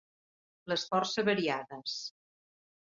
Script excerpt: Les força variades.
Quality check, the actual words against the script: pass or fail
pass